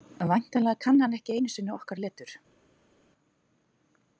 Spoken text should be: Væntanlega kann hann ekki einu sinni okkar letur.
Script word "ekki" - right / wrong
right